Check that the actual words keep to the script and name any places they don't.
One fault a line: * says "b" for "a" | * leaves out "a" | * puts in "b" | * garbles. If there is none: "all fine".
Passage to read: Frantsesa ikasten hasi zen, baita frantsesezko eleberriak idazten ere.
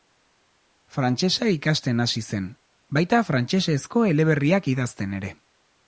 all fine